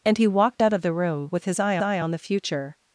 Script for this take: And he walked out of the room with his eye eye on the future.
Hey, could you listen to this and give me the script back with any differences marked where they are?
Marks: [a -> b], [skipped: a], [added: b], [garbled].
And he walked out of the room with his eye eye on the future.